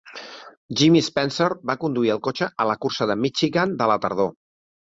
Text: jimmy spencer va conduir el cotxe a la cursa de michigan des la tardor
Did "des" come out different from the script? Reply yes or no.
yes